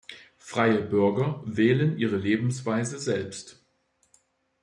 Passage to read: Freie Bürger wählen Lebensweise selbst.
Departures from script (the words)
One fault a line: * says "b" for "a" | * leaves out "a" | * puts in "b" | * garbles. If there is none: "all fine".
* puts in "Ihre"